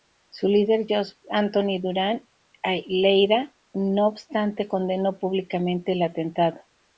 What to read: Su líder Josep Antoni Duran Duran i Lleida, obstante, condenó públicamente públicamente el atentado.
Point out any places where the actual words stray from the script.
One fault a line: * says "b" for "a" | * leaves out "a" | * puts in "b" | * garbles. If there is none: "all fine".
* leaves out "Duran"
* puts in "no"
* leaves out "públicamente"